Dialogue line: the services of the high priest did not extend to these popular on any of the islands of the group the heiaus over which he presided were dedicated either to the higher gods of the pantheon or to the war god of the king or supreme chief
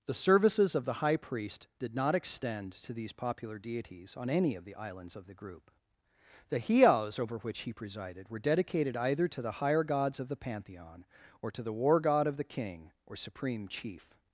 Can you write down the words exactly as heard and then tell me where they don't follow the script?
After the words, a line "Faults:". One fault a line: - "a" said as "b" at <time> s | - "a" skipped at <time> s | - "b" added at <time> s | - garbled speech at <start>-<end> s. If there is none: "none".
the services of the high priest did not extend to these popular deities on any of the islands of the group the heiaus over which he presided were dedicated either to the higher gods of the pantheon or to the war god of the king or supreme chief
Faults:
- "deities" added at 3.6 s